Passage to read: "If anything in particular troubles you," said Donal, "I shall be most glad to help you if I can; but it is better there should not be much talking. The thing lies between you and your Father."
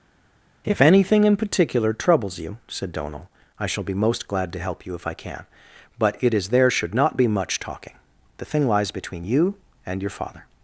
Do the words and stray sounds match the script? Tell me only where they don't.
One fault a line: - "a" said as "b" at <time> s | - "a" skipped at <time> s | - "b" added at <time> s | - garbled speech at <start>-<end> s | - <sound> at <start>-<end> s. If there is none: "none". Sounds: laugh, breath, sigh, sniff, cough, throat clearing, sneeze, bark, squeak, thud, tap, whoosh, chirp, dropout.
- "better" skipped at 6.5 s